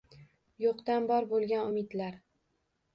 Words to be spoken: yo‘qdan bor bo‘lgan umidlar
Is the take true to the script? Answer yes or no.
yes